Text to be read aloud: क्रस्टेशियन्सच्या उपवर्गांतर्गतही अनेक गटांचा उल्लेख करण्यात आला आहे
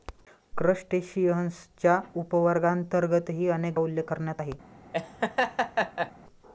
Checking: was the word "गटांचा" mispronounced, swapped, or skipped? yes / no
yes